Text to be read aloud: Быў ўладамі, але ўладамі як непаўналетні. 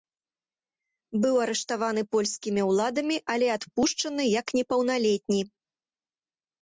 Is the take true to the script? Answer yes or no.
no